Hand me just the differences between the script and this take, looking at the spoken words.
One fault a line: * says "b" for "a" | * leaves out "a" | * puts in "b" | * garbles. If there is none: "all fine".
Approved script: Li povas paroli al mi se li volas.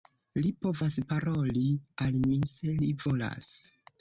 all fine